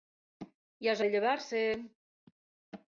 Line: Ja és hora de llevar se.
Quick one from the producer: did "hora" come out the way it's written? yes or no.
no